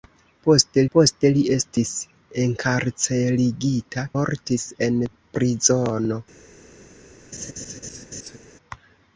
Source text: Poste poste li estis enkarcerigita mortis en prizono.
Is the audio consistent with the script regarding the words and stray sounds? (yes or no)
no